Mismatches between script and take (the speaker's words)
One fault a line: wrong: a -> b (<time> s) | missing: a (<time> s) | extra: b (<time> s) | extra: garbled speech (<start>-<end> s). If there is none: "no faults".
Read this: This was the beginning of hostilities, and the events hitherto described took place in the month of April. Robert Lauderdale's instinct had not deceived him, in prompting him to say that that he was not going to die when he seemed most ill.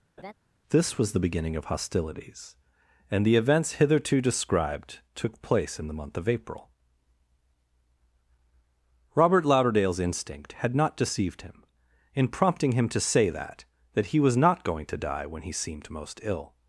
no faults